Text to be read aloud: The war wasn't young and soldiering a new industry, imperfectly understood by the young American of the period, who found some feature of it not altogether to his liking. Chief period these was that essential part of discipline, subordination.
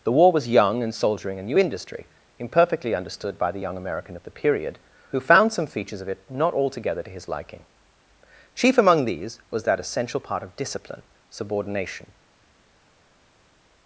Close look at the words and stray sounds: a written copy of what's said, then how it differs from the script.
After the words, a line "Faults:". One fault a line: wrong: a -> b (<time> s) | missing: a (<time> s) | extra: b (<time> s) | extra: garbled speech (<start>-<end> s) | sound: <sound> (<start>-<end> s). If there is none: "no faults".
The war was young and soldiering a new industry, imperfectly understood by the young American of the period, who found some features of it not altogether to his liking. Chief among these was that essential part of discipline, subordination.
Faults:
wrong: wasn't -> was (0.3 s)
wrong: feature -> features (5.7 s)
wrong: period -> among (8.8 s)